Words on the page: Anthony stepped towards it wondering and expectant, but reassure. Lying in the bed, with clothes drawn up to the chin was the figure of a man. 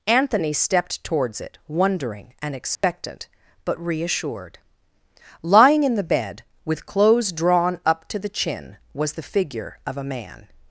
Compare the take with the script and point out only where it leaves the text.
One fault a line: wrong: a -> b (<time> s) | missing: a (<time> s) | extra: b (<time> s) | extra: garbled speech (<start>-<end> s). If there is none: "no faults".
wrong: reassure -> reassured (3.8 s)